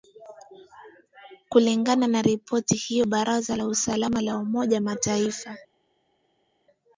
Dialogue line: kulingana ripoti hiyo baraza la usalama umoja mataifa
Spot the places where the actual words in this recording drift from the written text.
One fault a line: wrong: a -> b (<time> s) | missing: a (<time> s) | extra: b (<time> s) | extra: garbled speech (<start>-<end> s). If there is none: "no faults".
extra: na (2.1 s)
extra: la (4.2 s)